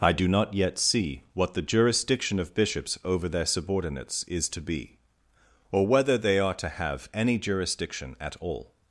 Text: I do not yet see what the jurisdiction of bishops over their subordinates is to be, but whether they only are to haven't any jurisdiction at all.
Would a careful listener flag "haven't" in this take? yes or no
yes